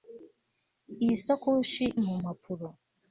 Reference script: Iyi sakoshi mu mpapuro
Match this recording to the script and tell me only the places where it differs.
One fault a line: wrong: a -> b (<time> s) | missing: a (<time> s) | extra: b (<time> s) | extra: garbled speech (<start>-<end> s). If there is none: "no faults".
no faults